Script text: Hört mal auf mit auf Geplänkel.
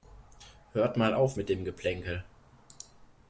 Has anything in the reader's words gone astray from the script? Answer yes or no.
yes